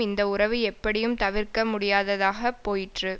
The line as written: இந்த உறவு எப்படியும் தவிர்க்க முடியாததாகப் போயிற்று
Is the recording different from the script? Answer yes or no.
no